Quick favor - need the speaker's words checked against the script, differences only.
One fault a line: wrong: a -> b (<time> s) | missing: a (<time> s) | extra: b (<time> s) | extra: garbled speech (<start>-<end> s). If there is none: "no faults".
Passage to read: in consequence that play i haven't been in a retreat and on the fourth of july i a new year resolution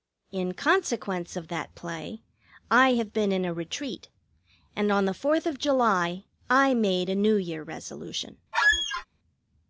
extra: of (1.4 s)
wrong: haven't -> have (3.0 s)
extra: made (6.7 s)